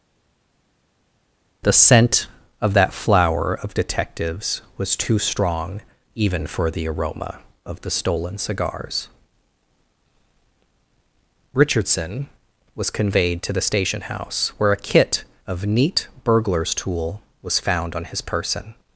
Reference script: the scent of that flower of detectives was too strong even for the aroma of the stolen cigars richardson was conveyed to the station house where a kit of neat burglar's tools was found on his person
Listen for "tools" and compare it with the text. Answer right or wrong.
wrong